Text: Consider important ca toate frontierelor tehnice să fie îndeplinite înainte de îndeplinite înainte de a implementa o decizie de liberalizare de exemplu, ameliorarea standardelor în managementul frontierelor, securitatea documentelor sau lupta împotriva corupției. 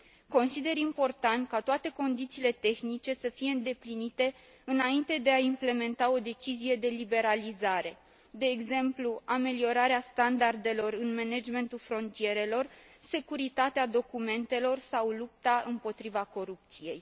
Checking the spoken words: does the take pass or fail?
fail